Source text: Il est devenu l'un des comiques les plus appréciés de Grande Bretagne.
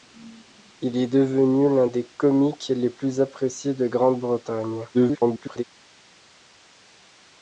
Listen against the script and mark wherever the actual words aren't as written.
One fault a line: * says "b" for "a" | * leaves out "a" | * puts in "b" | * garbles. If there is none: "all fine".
* garbles